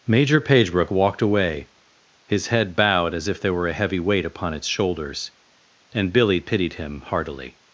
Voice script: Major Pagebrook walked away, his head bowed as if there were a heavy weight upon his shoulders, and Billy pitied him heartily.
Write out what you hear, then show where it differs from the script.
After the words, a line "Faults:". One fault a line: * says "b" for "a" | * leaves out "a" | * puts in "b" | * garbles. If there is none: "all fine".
Major Pagebrook walked away, his head bowed as if there were a heavy weight upon its shoulders, and Billy pitied him heartily.
Faults:
* says "its" for "his"